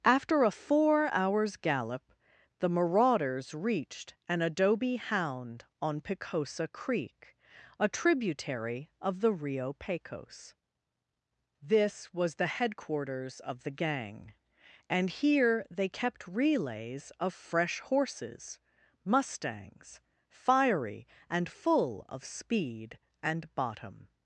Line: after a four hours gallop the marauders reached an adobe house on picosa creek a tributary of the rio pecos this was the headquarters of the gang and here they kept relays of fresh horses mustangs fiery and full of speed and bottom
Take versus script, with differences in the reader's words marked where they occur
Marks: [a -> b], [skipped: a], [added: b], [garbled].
after a four hours gallop the marauders reached an adobe [house -> hound] on picosa creek a tributary of the rio pecos this was the headquarters of the gang and here they kept relays of fresh horses mustangs fiery and full of speed and bottom